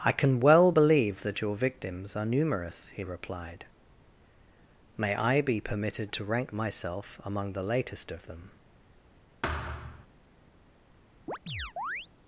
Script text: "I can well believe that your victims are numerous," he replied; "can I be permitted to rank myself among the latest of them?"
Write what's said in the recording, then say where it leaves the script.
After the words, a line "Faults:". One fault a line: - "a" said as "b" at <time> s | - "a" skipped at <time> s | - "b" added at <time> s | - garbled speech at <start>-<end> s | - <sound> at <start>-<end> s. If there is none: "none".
"I can well believe that your victims are numerous," he replied; "may I be permitted to rank myself among the latest of them?"
Faults:
- "can" said as "may" at 4.9 s
- thud at 9.4-10.1 s
- chirp at 11.3-12.1 s